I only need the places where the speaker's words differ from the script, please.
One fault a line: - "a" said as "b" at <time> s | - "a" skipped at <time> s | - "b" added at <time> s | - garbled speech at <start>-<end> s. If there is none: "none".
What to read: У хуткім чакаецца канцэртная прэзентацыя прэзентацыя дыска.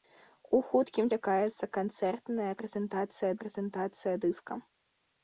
none